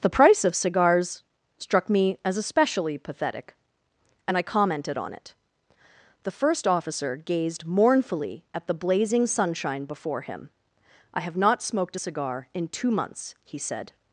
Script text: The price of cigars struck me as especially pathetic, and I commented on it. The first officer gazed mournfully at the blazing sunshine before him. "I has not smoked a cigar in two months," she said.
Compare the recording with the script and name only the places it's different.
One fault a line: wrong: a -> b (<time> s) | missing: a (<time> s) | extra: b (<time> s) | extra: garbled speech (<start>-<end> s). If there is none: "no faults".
wrong: has -> have (11.2 s)
wrong: she -> he (13.4 s)